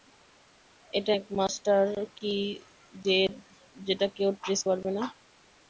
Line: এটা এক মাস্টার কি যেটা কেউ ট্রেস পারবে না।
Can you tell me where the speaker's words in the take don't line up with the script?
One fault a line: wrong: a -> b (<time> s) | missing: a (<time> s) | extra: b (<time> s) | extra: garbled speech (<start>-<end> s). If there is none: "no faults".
no faults